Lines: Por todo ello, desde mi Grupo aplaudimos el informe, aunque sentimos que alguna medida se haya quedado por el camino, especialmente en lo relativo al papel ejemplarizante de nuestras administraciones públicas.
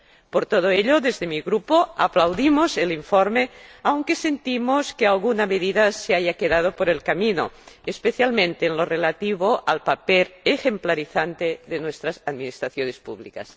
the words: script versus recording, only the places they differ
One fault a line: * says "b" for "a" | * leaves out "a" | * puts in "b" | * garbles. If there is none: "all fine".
all fine